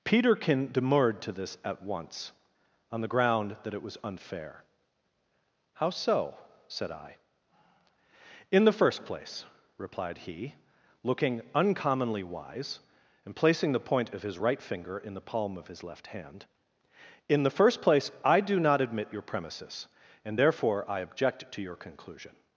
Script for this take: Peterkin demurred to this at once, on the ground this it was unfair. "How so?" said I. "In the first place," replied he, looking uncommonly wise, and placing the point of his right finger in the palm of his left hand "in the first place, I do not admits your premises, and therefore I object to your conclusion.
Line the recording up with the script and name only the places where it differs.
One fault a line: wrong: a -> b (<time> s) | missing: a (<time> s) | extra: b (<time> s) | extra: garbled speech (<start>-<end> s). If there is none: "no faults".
wrong: this -> that (3.6 s)
wrong: admits -> admit (18.8 s)